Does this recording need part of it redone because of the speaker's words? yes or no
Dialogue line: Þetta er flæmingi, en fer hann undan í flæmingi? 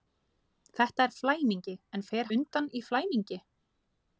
yes